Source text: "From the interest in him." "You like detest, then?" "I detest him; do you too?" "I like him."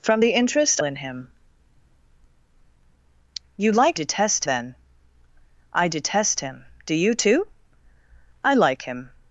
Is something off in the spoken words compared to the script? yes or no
no